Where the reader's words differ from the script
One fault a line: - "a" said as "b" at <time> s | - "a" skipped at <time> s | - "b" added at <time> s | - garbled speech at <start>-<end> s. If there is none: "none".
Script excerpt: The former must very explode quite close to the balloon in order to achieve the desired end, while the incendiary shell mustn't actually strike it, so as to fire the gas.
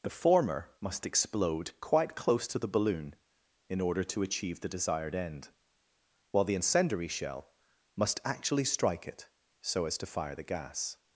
- "very" skipped at 1.1 s
- "mustn't" said as "must" at 8.0 s